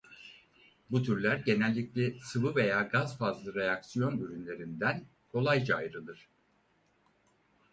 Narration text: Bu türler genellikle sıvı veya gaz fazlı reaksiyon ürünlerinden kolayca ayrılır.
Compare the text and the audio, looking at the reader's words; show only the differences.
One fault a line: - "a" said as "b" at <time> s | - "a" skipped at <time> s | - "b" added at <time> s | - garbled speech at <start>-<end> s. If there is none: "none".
none